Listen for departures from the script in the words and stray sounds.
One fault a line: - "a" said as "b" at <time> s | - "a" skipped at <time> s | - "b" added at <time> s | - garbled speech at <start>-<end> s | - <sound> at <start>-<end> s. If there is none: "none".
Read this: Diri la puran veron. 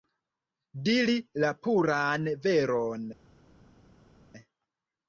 none